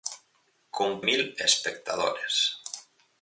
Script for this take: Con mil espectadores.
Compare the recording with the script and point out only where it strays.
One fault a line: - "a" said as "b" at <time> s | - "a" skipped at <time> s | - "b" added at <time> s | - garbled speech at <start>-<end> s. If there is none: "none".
none